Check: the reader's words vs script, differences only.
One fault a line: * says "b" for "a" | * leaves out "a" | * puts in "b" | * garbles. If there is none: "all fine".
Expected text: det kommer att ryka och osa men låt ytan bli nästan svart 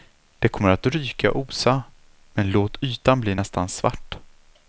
all fine